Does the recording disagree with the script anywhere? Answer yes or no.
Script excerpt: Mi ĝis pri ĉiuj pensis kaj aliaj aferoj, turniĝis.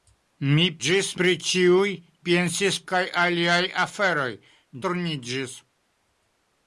no